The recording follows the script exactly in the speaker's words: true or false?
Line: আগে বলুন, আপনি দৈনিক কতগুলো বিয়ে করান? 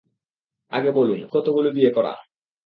false